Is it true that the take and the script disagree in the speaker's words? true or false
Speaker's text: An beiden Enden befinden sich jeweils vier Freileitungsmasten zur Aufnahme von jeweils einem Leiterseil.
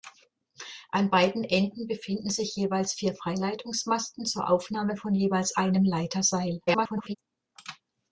true